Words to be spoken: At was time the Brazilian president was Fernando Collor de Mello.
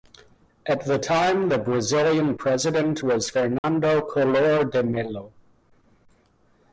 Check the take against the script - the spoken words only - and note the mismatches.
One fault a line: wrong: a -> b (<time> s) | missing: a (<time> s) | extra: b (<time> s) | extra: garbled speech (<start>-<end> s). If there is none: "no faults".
wrong: was -> the (0.8 s)